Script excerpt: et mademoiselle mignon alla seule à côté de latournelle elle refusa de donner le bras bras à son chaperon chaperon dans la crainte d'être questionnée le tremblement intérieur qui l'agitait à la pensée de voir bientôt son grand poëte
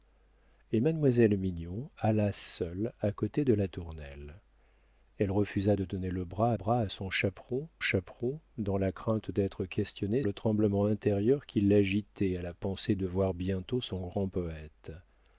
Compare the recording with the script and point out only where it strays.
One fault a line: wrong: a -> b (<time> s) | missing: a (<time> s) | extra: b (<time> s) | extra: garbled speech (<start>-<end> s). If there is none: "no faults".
no faults